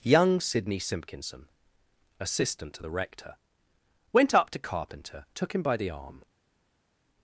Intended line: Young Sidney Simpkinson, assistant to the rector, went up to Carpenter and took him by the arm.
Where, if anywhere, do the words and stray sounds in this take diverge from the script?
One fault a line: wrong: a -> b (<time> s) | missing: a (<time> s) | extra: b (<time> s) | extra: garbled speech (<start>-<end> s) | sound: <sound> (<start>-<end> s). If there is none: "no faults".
missing: and (5.2 s)